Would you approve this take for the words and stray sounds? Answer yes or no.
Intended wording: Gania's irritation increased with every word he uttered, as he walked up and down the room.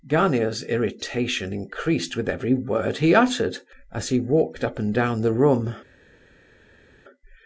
yes